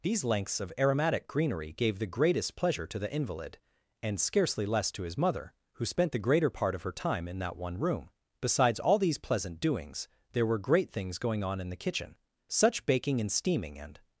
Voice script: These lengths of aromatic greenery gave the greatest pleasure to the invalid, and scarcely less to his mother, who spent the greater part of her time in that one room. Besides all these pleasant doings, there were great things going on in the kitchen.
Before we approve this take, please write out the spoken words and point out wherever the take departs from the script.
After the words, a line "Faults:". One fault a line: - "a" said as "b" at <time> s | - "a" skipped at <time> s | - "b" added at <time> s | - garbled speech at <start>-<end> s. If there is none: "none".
These lengths of aromatic greenery gave the greatest pleasure to the invalid, and scarcely less to his mother, who spent the greater part of her time in that one room. Besides all these pleasant doings, there were great things going on in the kitchen. Such baking and steaming and
Faults:
- "Such baking and steaming and" added at 12.5 s